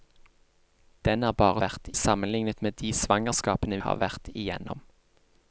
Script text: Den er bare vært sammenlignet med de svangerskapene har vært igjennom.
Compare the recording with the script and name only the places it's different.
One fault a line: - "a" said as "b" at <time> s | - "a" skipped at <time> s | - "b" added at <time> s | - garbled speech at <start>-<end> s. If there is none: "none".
none